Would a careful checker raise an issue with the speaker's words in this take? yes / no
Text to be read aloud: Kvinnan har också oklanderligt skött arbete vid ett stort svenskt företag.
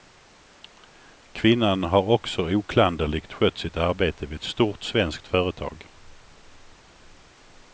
yes